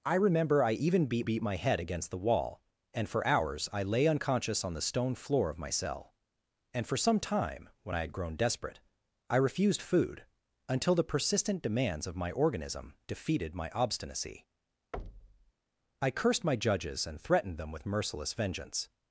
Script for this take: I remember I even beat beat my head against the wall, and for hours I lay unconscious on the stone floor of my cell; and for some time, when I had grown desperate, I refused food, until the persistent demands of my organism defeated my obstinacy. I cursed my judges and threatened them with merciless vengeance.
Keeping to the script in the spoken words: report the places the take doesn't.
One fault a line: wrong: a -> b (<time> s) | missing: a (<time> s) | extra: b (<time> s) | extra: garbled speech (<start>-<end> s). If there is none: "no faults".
no faults